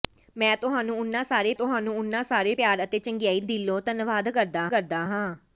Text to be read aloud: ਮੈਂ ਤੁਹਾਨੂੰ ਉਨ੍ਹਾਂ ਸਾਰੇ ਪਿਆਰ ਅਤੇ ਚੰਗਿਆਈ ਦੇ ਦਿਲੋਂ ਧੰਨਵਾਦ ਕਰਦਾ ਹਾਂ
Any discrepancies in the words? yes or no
yes